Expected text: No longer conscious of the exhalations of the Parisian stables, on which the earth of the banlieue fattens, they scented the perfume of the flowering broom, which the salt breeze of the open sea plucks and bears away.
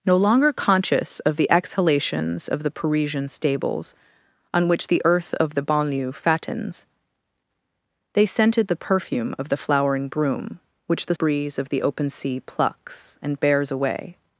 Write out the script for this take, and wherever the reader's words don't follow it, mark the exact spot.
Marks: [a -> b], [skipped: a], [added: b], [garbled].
No longer conscious of the exhalations of the Parisian stables, on which the earth of the banlieue fattens, they scented the perfume of the flowering broom, which the [skipped: salt] breeze of the open sea plucks and bears away.